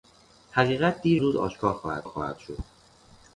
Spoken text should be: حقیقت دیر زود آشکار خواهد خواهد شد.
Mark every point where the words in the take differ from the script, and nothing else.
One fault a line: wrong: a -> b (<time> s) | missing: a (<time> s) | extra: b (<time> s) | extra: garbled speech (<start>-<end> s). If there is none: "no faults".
no faults